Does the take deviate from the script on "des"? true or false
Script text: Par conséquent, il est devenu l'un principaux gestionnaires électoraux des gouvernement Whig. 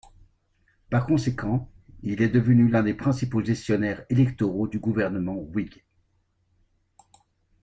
true